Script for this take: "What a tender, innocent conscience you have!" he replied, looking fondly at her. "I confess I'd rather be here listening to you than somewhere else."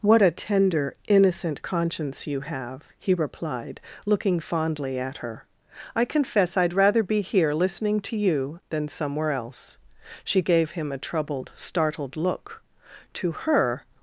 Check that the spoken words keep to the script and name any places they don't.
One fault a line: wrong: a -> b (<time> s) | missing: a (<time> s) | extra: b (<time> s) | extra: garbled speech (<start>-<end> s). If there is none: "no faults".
extra: She gave him a troubled startled look To her (10.2 s)